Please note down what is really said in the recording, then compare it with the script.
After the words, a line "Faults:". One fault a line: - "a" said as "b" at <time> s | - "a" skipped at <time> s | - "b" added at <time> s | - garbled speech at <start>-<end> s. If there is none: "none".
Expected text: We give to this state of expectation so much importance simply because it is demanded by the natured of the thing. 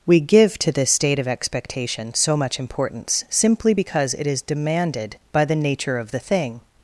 We give to this state of expectation so much importance simply because it is demanded by the nature of the thing.
Faults:
- "natured" said as "nature" at 5.6 s